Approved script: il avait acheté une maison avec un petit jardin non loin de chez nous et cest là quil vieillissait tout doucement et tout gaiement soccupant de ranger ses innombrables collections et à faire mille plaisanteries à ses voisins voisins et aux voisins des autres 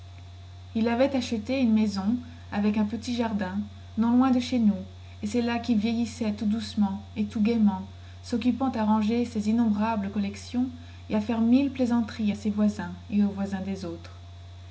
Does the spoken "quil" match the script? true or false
true